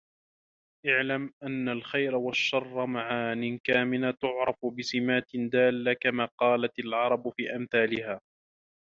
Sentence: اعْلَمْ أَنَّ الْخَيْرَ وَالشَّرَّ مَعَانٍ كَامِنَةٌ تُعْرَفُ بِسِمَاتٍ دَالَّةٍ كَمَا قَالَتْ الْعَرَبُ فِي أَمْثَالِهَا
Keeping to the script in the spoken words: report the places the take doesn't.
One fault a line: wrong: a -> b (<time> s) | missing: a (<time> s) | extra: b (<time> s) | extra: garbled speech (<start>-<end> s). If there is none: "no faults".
no faults